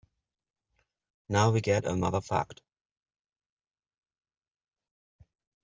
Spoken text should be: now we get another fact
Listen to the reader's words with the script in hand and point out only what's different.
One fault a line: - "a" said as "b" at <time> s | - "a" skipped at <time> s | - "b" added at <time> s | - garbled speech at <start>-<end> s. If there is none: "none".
none